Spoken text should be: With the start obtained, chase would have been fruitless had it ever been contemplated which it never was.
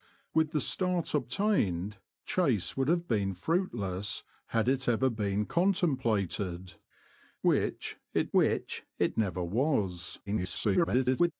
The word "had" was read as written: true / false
true